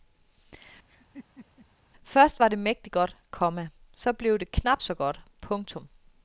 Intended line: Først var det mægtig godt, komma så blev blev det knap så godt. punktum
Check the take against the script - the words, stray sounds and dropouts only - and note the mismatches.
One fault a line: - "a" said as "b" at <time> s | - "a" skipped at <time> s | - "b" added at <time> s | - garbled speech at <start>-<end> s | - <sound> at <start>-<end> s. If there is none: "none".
- laugh at 0.9-1.7 s
- "blev" skipped at 4.4 s